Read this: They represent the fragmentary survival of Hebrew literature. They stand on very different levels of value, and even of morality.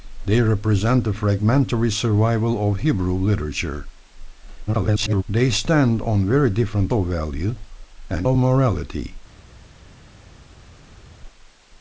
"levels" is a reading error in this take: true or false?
true